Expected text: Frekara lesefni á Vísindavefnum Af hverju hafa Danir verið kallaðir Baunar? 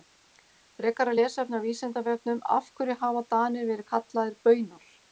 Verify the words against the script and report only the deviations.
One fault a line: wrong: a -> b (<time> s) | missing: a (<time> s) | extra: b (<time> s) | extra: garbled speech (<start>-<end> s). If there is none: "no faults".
no faults